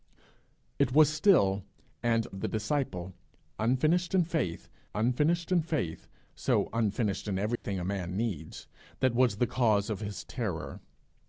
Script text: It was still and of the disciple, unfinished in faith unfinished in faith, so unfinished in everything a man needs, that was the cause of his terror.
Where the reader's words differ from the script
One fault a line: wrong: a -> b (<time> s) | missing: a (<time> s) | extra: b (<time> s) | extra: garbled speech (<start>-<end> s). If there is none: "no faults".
no faults